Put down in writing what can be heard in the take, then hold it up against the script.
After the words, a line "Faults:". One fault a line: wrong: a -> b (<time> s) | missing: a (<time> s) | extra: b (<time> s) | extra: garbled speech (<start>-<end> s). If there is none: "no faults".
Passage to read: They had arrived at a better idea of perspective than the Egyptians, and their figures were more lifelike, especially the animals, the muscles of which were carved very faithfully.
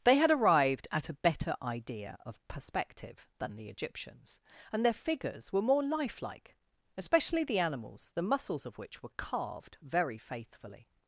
They had arrived at a better idea of perspective than the Egyptians, and their figures were more lifelike, especially the animals, the muscles of which were carved very faithfully.
Faults:
no faults